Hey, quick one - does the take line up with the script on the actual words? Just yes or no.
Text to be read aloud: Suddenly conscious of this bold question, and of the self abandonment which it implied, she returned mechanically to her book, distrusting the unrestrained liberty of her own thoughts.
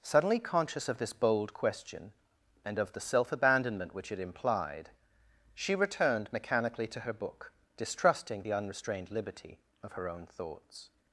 yes